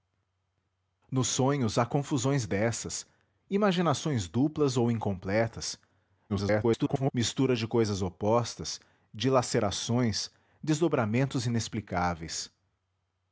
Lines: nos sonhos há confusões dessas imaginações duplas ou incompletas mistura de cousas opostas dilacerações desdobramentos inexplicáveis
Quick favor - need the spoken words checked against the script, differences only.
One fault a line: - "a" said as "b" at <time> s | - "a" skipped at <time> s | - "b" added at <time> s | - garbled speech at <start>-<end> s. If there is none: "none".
- garbled speech at 6.3-7.1 s